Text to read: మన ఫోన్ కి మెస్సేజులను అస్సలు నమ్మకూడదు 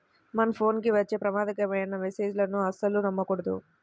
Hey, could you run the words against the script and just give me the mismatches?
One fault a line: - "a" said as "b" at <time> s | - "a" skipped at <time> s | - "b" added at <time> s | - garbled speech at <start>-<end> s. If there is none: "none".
- "వచ్చే ప్రమాదకరమైన" added at 0.9 s